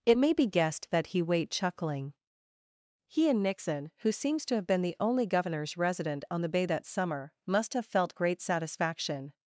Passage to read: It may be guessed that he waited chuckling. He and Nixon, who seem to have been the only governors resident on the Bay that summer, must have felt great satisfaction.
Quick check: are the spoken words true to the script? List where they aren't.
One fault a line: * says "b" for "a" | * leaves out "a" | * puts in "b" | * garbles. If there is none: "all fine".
* says "wait" for "waited"
* says "seems" for "seem"